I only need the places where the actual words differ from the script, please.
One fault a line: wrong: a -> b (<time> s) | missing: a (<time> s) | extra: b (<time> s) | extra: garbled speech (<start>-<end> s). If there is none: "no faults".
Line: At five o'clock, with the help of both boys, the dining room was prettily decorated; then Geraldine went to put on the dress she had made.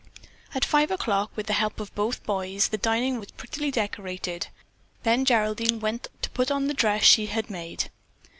missing: room (3.2 s)